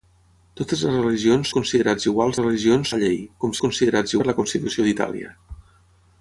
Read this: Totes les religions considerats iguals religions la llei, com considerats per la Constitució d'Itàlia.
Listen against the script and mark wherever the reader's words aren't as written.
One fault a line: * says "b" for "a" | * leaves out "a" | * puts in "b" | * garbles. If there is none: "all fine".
all fine